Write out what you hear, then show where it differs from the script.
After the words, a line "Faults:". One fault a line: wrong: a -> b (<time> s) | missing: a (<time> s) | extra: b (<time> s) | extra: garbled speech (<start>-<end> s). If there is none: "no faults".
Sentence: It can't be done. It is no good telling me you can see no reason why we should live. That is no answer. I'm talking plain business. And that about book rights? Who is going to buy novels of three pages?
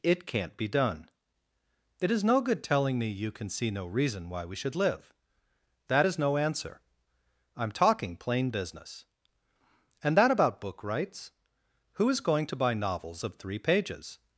It can't be done. It is no good telling me you can see no reason why we should live. That is no answer. I'm talking plain business. And that about book rights? Who is going to buy novels of three pages?
Faults:
no faults